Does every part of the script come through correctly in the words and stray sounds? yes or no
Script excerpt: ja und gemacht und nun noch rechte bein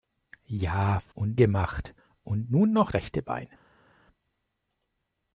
yes